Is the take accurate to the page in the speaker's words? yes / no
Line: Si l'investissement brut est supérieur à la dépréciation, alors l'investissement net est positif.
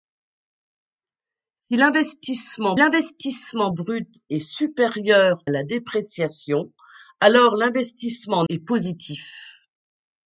no